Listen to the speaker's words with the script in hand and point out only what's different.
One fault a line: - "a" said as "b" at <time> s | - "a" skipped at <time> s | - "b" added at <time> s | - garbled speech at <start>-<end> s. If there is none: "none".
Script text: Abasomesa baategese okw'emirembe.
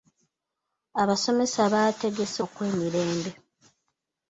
none